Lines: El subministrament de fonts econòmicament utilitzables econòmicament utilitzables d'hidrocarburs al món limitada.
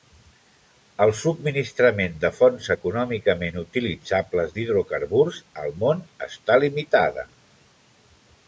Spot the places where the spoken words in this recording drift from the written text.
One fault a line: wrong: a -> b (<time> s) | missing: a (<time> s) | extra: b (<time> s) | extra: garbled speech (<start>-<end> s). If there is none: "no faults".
missing: econòmicament utilitzables (4.6 s)
extra: està (6.3 s)